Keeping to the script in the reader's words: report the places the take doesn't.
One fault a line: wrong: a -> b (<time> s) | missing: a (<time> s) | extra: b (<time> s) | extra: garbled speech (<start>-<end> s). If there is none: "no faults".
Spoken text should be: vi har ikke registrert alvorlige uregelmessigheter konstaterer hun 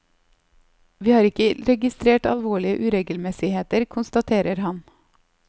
wrong: hun -> han (4.7 s)